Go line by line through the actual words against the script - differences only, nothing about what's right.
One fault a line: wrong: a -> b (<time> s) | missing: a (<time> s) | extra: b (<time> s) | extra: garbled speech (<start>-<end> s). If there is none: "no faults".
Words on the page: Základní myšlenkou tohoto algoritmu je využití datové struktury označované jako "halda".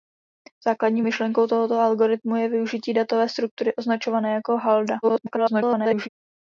extra: garbled speech (5.0-6.1 s)